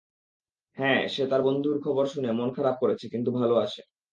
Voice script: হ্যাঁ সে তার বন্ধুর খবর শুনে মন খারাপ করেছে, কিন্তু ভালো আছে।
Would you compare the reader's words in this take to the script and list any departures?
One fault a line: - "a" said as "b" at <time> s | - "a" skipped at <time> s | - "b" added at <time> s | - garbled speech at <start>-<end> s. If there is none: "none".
none